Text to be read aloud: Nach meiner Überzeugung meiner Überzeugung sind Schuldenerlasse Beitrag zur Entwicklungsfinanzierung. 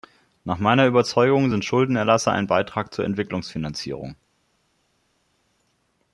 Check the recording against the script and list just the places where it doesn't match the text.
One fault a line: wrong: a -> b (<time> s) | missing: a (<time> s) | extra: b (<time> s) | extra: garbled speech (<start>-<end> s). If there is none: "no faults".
missing: meiner Überzeugung (1.5 s)
extra: ein (2.3 s)